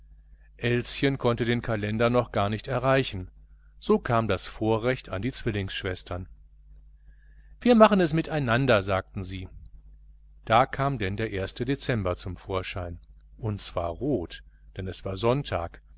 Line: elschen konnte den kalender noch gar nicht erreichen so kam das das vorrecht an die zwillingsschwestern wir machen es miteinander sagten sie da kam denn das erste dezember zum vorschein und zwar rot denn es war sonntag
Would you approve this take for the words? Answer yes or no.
no